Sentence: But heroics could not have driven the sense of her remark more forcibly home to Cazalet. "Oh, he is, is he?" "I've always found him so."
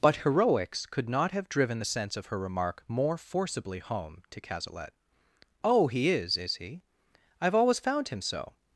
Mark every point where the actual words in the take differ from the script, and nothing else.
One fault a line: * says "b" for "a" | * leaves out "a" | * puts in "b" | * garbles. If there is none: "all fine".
all fine